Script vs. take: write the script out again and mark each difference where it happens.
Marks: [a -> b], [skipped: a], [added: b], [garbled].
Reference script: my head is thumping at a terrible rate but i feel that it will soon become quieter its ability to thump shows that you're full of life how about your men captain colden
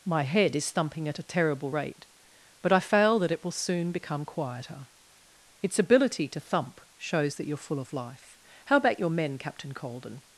my head is thumping at a terrible rate but i [feel -> fail] that it will soon become quieter its ability to thump shows that you're full of life how about your men captain colden